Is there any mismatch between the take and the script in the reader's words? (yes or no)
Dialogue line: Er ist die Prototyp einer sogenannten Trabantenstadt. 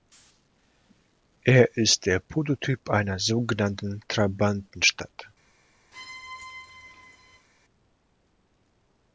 yes